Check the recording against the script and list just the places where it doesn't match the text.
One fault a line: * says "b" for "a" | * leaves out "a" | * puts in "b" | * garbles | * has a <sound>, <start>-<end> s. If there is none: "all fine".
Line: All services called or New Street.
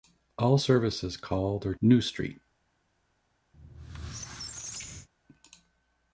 * has a squeak, 3.5-5.1 s